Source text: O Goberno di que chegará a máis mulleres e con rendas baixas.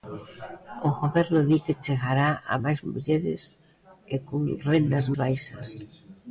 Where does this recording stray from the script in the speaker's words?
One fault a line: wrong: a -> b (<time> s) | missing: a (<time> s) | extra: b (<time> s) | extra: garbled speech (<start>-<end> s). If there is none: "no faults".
no faults